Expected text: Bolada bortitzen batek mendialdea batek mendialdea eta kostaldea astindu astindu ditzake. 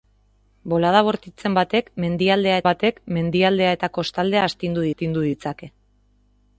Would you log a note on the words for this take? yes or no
no